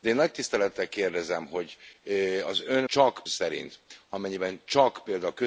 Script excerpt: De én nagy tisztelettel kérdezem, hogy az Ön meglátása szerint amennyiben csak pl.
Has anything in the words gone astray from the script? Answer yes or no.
yes